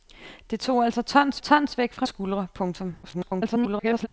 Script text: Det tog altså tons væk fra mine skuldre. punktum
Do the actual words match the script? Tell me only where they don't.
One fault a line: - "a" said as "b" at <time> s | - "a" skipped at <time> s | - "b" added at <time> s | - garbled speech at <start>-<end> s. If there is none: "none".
- "tons" added at 1.4 s
- "mine" skipped at 2.1 s
- garbled speech at 3.0-4.1 s